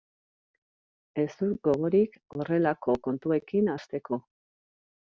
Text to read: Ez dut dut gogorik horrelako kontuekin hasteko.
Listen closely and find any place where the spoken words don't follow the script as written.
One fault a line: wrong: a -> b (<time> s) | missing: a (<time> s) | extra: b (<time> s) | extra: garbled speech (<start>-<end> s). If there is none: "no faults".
missing: dut (1.6 s)